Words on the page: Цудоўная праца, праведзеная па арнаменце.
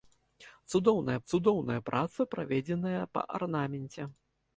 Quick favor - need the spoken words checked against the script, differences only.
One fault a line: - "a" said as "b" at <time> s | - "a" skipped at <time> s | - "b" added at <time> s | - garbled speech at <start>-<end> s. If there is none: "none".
- "цудоўная" added at 1.3 s